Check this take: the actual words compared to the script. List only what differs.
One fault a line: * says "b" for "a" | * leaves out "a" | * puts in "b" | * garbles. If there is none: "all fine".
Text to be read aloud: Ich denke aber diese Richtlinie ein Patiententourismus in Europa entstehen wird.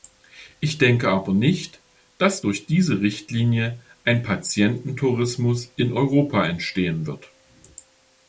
* puts in "nicht dass durch"